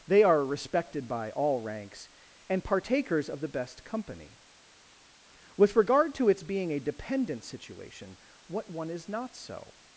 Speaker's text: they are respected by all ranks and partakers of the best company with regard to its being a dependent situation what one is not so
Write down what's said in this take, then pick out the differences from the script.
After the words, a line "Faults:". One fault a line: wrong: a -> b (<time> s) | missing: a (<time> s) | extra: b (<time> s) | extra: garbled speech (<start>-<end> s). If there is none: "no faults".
they are respected by all ranks and partakers of the best company with regard to its being a dependent situation what one is not so
Faults:
no faults